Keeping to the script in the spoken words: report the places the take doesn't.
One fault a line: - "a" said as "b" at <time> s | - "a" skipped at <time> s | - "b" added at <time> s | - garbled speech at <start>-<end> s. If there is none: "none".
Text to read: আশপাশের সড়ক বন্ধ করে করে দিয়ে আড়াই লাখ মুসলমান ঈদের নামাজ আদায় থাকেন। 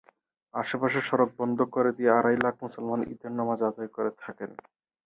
- "করে" skipped at 1.9 s
- "করে" added at 4.0 s